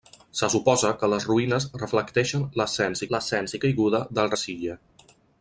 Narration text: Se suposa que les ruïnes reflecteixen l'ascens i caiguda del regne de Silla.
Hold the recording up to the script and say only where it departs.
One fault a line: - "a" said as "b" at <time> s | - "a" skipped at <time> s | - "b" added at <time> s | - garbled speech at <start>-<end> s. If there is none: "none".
- "l'ascens" added at 3.2 s
- "regne" skipped at 4.3 s